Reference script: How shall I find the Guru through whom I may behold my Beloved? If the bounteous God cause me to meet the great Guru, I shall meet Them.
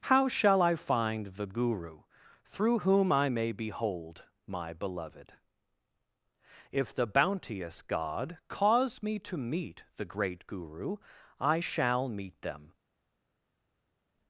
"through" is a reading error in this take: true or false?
false